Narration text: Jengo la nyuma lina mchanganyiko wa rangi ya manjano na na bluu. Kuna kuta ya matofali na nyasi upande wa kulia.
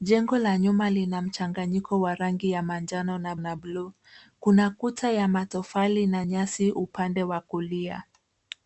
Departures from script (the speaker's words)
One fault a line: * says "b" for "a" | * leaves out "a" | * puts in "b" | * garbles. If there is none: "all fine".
all fine